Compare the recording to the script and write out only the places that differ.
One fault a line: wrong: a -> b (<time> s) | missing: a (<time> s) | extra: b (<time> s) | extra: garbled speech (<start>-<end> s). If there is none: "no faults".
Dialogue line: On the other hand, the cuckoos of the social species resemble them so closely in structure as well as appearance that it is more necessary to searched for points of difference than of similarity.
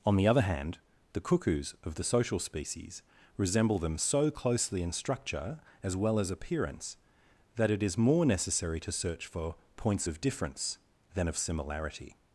wrong: searched -> search (8.9 s)